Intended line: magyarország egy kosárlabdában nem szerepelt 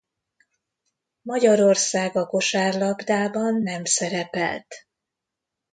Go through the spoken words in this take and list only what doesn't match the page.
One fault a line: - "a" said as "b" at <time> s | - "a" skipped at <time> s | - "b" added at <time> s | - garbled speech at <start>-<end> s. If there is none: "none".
- "egy" said as "a" at 2.1 s